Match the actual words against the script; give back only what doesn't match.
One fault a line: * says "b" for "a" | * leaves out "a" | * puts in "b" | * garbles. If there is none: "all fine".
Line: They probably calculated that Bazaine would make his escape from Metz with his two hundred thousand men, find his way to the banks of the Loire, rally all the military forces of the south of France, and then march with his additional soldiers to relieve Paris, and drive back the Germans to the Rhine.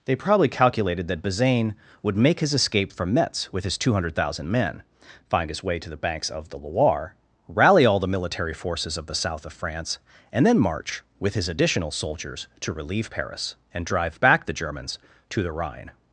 all fine